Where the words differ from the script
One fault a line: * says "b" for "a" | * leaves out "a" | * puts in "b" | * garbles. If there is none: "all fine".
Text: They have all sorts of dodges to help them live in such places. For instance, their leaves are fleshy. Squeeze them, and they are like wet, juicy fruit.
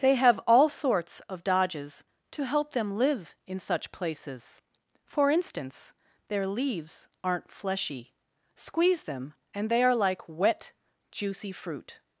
* says "aren't" for "are"